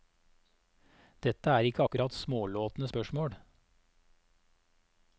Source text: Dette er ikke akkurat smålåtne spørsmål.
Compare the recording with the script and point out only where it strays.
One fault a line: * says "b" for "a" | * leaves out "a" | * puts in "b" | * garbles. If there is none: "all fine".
all fine